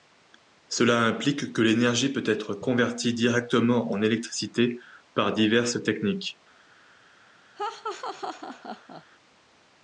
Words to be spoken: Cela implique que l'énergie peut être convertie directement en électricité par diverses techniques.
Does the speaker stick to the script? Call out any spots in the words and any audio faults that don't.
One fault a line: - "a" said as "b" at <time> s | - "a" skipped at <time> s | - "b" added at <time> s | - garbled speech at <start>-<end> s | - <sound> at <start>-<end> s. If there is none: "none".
- laugh at 7.6-9.0 s